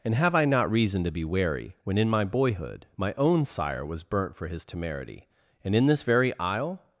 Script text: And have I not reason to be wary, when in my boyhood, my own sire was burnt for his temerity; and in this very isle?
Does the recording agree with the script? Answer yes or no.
yes